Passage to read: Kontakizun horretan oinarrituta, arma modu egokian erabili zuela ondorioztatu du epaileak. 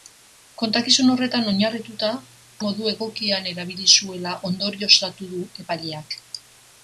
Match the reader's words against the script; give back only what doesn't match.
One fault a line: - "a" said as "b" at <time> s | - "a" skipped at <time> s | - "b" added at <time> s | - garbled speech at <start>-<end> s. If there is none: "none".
- "arma" skipped at 2.1 s